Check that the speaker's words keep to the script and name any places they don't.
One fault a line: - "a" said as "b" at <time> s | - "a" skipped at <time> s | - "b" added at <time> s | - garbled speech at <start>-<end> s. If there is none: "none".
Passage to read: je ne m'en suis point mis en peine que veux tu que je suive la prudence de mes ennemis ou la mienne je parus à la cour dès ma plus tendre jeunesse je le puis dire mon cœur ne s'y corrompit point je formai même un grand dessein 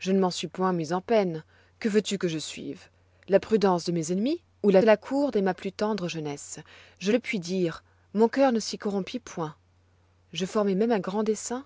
- "mienne je parus" skipped at 4.8 s